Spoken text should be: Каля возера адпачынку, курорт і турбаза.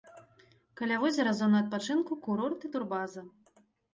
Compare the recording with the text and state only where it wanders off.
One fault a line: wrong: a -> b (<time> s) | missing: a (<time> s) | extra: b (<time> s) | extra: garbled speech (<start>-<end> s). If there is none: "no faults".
extra: зона (1.4 s)